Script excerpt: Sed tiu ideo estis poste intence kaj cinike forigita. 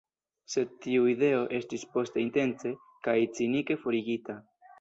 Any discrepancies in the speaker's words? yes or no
no